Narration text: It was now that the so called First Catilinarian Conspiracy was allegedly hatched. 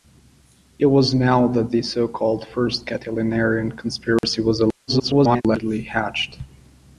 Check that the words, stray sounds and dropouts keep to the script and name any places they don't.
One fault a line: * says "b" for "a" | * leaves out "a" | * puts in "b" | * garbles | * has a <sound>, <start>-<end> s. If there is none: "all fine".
* has a dropout, 4.2-4.2 s
* garbles